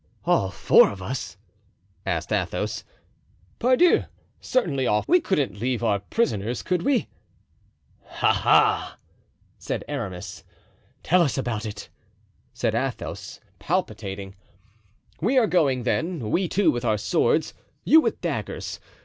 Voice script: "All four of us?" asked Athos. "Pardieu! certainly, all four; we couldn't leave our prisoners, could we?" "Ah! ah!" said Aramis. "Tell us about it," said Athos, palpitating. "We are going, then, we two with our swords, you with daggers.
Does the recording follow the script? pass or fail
fail